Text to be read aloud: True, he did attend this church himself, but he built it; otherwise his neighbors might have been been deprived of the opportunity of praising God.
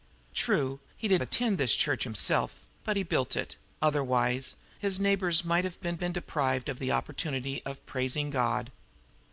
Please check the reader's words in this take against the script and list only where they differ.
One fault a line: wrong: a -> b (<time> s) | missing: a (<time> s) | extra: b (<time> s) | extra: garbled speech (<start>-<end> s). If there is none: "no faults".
no faults